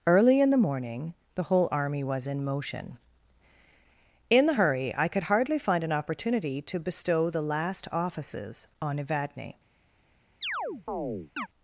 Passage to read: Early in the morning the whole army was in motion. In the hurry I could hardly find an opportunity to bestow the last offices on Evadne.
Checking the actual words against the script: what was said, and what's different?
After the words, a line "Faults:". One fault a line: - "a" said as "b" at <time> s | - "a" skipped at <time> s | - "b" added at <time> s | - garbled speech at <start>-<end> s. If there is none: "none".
Early in the morning the whole army was in motion. In the hurry I could hardly find an opportunity to bestow the last offices on Evadne.
Faults:
none